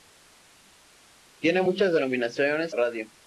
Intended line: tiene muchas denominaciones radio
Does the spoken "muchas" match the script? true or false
true